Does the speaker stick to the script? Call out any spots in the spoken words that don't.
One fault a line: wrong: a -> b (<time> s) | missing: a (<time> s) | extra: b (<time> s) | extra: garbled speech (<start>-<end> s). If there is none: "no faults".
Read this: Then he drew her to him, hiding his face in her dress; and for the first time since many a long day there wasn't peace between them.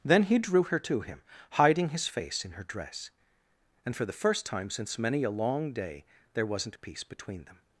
no faults